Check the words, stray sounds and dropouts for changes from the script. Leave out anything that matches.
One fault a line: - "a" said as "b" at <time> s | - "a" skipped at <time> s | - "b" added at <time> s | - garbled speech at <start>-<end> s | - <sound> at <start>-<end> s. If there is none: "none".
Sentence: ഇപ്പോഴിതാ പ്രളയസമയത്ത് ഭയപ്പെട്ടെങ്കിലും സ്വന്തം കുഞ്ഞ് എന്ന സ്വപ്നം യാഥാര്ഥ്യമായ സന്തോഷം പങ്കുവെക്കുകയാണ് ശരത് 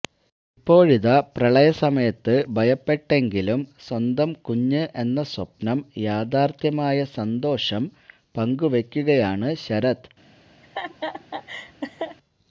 - laugh at 10.6-12.2 s